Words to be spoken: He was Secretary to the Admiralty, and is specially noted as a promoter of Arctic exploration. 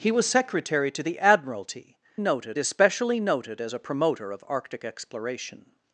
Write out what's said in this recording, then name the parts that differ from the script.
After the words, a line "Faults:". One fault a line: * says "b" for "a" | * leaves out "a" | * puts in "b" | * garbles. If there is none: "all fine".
He was Secretary to the Admiralty, noted is specially noted as a promoter of Arctic exploration.
Faults:
* says "noted" for "and"